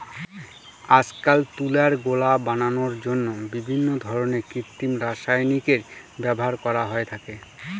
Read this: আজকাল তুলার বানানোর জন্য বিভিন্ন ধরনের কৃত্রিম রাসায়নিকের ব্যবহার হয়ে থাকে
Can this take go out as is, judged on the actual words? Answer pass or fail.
fail